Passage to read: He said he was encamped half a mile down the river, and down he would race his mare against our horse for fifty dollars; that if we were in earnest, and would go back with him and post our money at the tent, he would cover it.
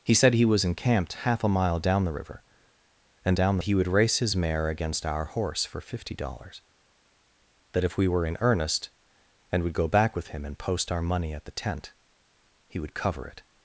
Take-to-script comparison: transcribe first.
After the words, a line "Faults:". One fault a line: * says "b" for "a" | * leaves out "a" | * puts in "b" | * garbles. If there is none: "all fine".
He said he was encamped half a mile down the river, and down he would race his mare against our horse for fifty dollars; that if we were in earnest, and would go back with him and post our money at the tent, he would cover it.
Faults:
all fine